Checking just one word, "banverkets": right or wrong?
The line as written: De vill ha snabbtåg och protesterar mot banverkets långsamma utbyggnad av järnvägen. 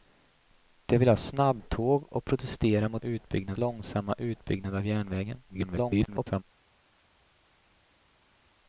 wrong